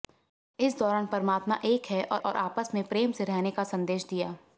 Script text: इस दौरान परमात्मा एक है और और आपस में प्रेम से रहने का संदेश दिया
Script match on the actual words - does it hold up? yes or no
yes